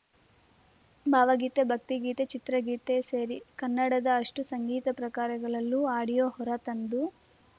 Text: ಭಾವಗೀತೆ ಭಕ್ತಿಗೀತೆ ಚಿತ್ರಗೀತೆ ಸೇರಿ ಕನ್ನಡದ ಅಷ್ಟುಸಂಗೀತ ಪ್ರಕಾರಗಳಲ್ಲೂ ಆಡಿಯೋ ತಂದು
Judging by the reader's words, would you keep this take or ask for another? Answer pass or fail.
fail